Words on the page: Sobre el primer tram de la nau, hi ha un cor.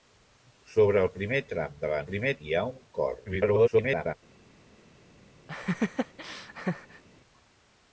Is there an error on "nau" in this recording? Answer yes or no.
yes